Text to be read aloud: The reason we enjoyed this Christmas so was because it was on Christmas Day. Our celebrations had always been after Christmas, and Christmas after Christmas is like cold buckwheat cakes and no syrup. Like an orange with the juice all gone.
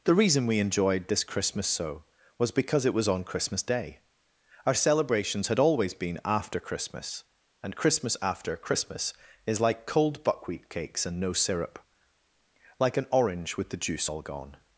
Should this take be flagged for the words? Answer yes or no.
no